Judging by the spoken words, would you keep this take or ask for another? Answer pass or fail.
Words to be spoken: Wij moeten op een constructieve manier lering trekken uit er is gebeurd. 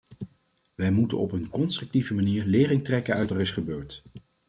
pass